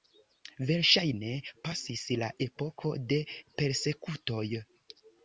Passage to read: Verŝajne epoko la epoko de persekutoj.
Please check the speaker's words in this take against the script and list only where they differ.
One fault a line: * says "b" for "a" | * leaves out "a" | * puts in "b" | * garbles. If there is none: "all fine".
* says "pasis" for "epoko"